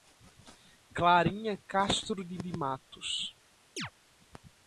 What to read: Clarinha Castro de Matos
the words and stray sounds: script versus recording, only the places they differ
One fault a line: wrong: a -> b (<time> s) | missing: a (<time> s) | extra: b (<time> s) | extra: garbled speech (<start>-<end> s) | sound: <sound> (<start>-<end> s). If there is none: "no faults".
extra: de (2.4 s)
sound: chirp (3.8-3.9 s)